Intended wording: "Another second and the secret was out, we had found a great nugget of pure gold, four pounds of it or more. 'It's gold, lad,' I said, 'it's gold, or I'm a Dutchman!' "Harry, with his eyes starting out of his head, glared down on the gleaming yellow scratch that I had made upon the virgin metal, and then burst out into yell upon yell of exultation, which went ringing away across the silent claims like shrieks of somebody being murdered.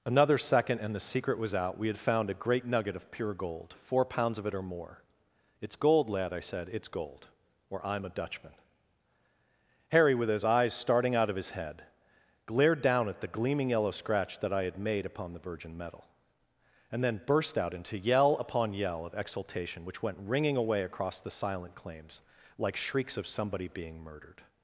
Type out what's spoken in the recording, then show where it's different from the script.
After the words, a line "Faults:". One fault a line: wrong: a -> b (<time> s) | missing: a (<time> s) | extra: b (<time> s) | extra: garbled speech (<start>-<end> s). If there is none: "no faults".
"Another second and the secret was out, we had found a great nugget of pure gold, four pounds of it or more. 'It's gold, lad,' I said, 'it's gold, or I'm a Dutchman!' "Harry, with his eyes starting out of his head, glared down at the gleaming yellow scratch that I had made upon the virgin metal, and then burst out into yell upon yell of exultation, which went ringing away across the silent claims like shrieks of somebody being murdered.
Faults:
wrong: on -> at (13.1 s)